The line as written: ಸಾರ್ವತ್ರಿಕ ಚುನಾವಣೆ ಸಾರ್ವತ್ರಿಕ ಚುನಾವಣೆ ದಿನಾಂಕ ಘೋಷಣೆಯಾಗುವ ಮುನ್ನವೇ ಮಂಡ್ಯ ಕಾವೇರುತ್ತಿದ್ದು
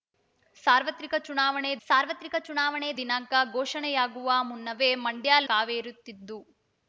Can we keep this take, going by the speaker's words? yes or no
yes